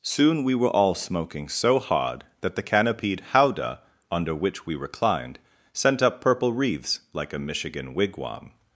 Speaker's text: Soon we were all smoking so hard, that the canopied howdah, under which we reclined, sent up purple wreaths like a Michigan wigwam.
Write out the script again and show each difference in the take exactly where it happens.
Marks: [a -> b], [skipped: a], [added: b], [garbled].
Soon we were all smoking so hard, that the canopied howdah, under which we reclined, sent up purple wreaths like a Michigan wigwam.